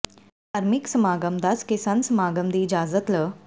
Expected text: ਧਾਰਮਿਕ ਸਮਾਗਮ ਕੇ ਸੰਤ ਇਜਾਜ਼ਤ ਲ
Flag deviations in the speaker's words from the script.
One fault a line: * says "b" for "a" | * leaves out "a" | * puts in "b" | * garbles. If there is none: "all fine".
* puts in "ਦੱਸ"
* puts in "ਸਮਾਗਮ ਦੀ"